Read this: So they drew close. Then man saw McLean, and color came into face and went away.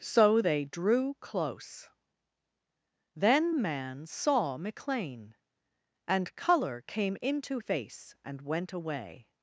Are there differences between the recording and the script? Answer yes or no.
no